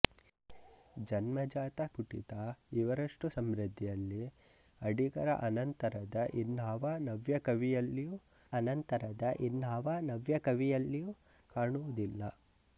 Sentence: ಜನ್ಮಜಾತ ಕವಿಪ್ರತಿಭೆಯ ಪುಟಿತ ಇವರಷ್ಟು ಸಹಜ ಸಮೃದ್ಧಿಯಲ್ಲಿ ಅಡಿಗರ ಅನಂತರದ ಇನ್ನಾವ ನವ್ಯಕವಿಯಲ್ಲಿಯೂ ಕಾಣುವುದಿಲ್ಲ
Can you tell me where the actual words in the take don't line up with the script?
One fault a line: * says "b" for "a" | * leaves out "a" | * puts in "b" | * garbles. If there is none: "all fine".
* leaves out "ಕವಿಪ್ರತಿಭೆಯ"
* leaves out "ಸಹಜ"
* puts in "ಅನಂತರದ ಇನ್ನಾವ ನವ್ಯಕವಿಯಲ್ಲಿಯೂ"